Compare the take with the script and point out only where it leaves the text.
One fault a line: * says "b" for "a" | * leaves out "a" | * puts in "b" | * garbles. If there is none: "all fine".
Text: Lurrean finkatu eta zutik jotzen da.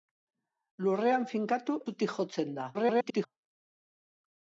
* leaves out "eta"
* garbles